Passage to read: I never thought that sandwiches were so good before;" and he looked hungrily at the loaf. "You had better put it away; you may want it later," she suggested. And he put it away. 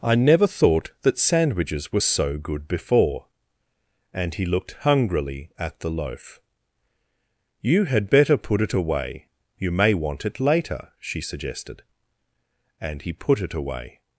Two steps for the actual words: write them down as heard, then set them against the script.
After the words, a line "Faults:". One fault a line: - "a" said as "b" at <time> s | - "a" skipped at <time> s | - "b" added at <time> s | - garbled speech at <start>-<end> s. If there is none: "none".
I never thought that sandwiches were so good before;" and he looked hungrily at the loaf. "You had better put it away; you may want it later," she suggested. And he put it away.
Faults:
none